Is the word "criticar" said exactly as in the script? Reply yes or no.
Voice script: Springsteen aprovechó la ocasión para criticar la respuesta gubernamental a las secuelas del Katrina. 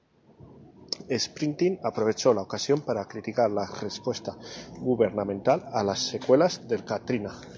yes